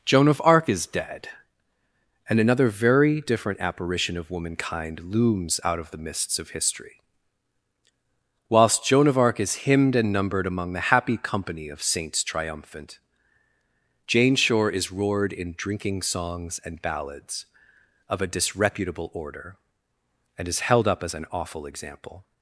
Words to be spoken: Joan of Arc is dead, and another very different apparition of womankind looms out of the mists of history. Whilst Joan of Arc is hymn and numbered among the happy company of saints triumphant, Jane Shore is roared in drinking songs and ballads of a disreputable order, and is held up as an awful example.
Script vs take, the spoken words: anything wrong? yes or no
yes